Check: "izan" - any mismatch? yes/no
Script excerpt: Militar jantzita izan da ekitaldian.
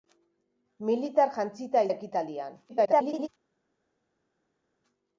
yes